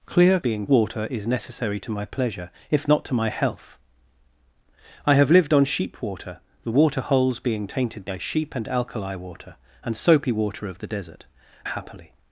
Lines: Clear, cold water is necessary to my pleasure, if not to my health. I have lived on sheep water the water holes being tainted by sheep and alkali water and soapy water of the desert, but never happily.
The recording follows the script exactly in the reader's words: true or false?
false